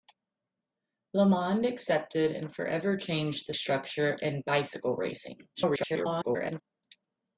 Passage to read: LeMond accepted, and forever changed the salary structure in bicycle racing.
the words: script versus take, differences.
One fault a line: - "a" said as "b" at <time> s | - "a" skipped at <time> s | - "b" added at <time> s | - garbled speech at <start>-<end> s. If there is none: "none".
- "salary" skipped at 3.5 s
- garbled speech at 5.5-6.6 s